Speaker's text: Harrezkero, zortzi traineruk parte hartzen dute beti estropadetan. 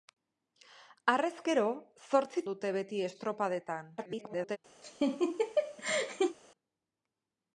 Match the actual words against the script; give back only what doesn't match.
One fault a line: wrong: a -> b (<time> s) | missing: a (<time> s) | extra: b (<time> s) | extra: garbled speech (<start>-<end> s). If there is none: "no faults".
missing: traineruk parte hartzen (2.4 s)
extra: garbled speech (4.0-4.6 s)